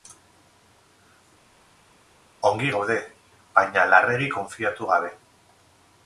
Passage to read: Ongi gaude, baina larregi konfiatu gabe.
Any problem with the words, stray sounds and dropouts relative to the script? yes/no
no